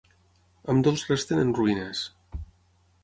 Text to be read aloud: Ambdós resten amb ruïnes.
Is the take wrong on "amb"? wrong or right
wrong